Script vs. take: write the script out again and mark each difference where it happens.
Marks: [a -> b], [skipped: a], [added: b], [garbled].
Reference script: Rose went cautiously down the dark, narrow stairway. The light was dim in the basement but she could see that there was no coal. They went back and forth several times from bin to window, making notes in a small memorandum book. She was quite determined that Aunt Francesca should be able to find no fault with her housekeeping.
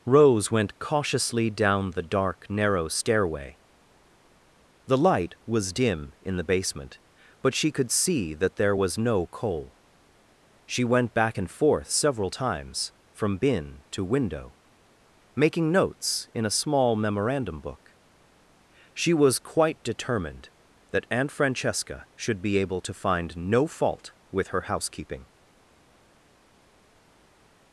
Rose went cautiously down the dark, narrow stairway. The light was dim in the basement but she could see that there was no coal. [They -> She] went back and forth several times from bin to window, making notes in a small memorandum book. She was quite determined that Aunt Francesca should be able to find no fault with her housekeeping.